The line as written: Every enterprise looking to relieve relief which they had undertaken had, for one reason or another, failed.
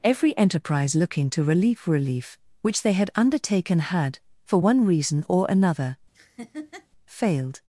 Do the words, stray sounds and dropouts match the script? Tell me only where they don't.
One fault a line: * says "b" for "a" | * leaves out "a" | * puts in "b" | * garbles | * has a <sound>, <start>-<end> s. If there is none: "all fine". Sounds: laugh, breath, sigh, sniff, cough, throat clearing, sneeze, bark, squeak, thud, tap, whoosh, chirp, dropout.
* has a laugh, 6.1-6.9 s